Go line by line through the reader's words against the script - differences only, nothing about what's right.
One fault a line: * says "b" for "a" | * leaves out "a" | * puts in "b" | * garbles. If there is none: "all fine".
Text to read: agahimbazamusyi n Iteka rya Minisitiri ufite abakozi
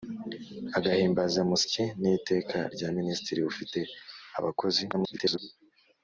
* garbles